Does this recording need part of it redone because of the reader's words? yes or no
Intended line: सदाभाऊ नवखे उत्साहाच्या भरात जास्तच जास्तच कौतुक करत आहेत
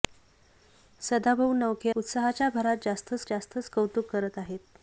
no